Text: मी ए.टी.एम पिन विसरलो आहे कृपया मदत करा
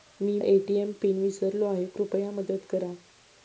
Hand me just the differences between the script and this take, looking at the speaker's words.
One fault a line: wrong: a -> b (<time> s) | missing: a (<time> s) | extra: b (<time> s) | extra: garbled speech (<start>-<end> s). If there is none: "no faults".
no faults